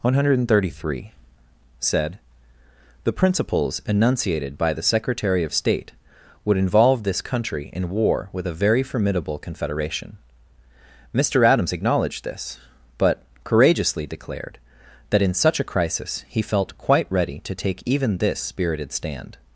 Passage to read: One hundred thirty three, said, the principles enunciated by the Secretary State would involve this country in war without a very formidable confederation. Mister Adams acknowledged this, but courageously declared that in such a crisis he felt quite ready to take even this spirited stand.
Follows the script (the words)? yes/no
no